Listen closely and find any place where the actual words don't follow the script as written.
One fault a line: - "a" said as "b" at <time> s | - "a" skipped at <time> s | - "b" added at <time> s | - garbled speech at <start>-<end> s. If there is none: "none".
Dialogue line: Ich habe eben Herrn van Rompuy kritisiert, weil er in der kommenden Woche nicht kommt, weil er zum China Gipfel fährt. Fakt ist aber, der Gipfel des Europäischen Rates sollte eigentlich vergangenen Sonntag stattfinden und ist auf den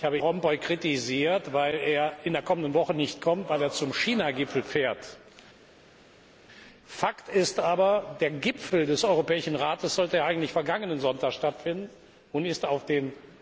- "eben Herrn van" skipped at 0.2 s